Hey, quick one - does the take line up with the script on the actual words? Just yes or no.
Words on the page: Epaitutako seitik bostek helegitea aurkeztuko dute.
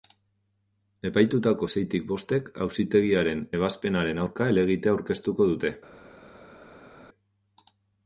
no